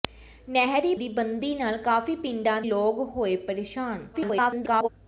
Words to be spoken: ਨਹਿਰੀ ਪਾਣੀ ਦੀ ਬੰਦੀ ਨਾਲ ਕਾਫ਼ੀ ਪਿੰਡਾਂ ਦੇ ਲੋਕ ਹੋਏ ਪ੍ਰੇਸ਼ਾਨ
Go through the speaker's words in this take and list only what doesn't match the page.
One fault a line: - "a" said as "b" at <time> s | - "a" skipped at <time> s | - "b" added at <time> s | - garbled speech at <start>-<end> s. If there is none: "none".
- "ਪਾਣੀ" skipped at 0.9 s
- "ਦੇ" skipped at 2.6 s
- garbled speech at 4.1-4.9 s